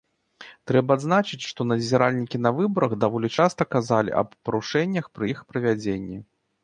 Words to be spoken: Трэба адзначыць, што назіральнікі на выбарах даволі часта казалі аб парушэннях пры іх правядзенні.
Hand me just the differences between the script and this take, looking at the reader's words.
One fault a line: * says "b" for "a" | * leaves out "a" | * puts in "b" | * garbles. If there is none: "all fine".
all fine